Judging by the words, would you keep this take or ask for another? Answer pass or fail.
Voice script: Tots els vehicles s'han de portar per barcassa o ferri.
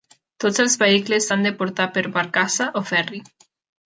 pass